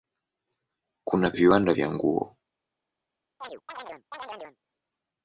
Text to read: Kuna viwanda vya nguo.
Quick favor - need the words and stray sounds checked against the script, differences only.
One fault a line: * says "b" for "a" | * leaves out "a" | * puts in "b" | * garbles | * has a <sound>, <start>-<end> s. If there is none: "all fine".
* has a chirp, 3.4-4.6 s